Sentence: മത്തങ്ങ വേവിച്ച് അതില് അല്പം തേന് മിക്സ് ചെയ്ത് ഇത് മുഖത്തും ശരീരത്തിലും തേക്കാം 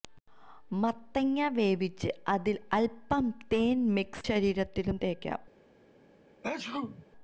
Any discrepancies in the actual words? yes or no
yes